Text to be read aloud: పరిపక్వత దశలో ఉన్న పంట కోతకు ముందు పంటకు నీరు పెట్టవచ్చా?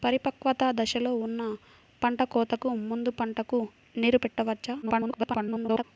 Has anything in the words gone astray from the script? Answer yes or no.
yes